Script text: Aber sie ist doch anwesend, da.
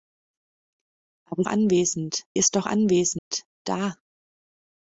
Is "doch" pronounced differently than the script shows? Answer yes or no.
no